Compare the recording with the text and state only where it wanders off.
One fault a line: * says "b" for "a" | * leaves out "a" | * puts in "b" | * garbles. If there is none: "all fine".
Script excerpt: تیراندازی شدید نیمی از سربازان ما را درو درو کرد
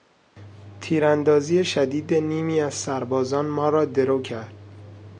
* leaves out "درو"